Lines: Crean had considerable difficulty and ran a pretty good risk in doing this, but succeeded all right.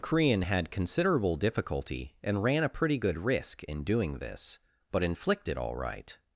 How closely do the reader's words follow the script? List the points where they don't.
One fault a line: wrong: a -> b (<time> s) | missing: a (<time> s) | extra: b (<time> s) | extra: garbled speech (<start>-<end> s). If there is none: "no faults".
wrong: succeeded -> inflicted (5.0 s)